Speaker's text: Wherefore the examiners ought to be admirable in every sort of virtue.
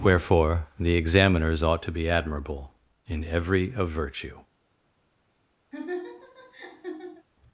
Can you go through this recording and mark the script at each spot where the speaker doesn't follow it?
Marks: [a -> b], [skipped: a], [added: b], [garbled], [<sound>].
Wherefore the examiners ought to be admirable in every [skipped: sort] of virtue. [laugh]